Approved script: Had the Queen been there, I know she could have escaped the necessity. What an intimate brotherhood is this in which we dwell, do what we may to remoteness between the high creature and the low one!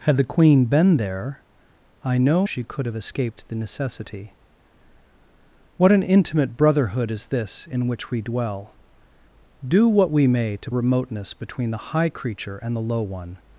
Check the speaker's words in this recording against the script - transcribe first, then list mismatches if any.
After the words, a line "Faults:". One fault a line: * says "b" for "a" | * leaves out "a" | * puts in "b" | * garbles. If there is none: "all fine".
Had the Queen been there, I know she could have escaped the necessity. What an intimate brotherhood is this in which we dwell, do what we may to remoteness between the high creature and the low one!
Faults:
all fine